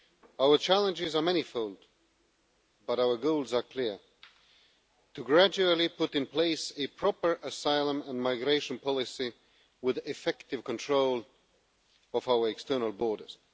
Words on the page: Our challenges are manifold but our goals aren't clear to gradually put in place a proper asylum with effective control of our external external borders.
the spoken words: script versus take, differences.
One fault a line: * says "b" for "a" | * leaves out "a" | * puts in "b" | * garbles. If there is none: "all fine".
* says "are" for "aren't"
* puts in "and migration policy"
* leaves out "external"